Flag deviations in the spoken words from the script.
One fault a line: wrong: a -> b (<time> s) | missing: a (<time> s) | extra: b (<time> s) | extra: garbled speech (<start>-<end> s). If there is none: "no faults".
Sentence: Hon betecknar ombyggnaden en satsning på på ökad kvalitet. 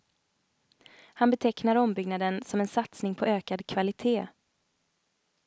wrong: Hon -> Han (1.1 s)
extra: som (2.5 s)
missing: på (3.2 s)